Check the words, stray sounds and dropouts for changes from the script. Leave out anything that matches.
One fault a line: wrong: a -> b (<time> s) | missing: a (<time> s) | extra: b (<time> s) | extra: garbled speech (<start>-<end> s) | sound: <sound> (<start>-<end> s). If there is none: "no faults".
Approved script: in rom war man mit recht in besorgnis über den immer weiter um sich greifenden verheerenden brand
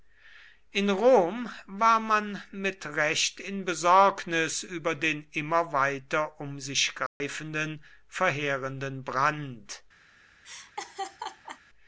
sound: dropout (7.1-7.2 s)
sound: laugh (10.4-11.6 s)